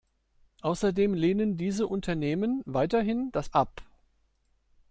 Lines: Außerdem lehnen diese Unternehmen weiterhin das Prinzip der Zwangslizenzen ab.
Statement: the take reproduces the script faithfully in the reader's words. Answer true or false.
false